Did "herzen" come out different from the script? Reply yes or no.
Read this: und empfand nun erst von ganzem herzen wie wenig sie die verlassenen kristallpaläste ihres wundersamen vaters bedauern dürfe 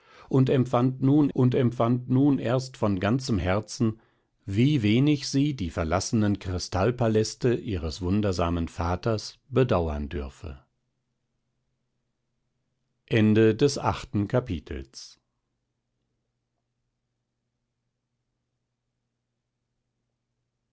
no